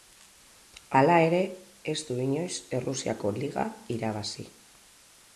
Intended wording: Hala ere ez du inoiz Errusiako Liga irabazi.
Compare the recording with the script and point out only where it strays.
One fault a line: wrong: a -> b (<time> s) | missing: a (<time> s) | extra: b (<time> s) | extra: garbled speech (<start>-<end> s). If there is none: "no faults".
no faults